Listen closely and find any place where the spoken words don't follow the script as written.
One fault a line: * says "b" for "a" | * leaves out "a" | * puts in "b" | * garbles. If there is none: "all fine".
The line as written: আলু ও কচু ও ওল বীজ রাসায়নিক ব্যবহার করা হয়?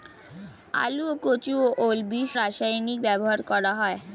all fine